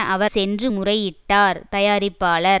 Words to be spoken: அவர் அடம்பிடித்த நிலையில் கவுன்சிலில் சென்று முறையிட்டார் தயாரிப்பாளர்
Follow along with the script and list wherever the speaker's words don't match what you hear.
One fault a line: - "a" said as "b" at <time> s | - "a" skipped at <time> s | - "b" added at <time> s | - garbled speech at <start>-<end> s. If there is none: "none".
- "அடம்பிடித்த நிலையில் கவுன்சிலில்" skipped at 0.3 s